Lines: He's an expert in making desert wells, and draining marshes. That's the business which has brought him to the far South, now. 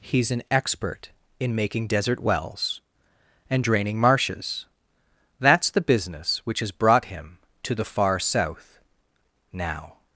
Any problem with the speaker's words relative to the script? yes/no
no